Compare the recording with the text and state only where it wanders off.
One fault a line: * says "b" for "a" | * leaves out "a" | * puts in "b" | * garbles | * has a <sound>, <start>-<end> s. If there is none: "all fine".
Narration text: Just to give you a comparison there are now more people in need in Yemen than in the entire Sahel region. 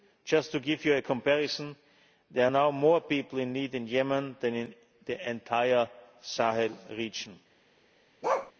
* has a bark, 8.2-8.5 s